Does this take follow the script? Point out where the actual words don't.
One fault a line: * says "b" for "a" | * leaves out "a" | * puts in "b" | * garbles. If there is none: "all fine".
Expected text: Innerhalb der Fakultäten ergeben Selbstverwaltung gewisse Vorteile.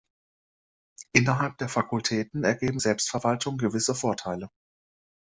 all fine